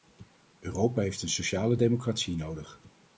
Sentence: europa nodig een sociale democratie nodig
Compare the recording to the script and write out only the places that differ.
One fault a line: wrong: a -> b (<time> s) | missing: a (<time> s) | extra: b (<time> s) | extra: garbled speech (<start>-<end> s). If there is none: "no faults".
wrong: nodig -> heeft (1.0 s)